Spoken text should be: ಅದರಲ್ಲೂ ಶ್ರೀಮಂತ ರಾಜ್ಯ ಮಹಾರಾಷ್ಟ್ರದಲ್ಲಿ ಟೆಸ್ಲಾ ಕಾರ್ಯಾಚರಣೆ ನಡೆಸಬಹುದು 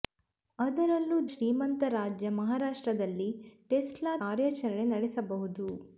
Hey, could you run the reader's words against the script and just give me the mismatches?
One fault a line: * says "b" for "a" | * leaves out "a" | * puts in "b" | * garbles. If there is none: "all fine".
all fine